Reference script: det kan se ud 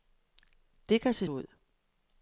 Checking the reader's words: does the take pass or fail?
pass